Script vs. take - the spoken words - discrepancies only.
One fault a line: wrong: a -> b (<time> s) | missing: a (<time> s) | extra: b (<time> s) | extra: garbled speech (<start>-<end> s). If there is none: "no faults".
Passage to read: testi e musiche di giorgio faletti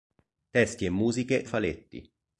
missing: di giorgio (1.5 s)